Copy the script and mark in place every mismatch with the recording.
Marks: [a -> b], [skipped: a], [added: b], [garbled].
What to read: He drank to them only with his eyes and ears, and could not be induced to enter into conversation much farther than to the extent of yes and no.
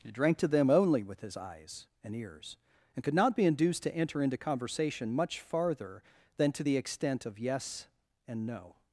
He drank to them only with his eyes and ears, and could not be induced to enter into conversation much farther than to the extent of yes and no.